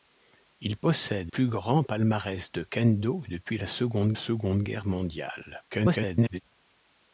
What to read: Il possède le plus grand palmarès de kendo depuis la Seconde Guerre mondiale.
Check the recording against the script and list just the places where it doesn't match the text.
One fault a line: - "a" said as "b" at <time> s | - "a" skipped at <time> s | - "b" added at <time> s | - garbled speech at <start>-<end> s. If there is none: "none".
- "le" skipped at 1.3 s
- "Seconde" added at 4.1 s
- garbled speech at 5.7-6.4 s